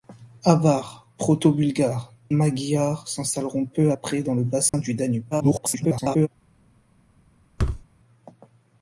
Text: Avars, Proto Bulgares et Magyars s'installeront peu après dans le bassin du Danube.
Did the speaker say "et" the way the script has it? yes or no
no